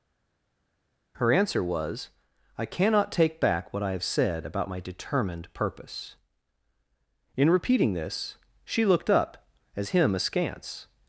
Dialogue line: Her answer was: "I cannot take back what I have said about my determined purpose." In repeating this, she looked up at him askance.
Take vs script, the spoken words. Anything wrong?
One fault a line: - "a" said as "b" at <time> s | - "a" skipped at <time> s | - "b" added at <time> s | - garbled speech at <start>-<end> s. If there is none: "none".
- "at" said as "as" at 9.8 s